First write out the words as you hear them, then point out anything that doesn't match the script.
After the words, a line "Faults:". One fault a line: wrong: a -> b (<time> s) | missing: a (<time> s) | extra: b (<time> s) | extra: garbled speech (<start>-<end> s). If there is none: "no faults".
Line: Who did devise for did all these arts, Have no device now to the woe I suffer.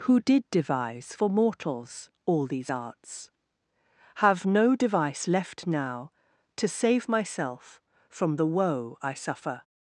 Who did devise for mortals all these arts, Have no device left now to save myself From the woe I suffer.
Faults:
wrong: did -> mortals (1.3 s)
extra: left (5.3 s)
extra: save myself From (6.7 s)